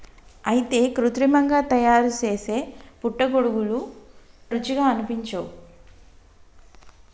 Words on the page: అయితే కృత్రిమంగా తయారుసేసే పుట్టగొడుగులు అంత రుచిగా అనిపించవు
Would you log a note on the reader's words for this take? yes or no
yes